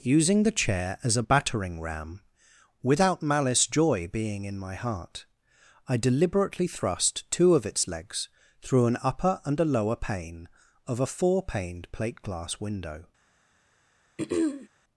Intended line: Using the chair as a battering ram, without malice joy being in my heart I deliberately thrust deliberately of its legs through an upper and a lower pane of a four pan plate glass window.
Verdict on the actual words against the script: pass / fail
fail